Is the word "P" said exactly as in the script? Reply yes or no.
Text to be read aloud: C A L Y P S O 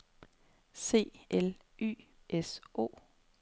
no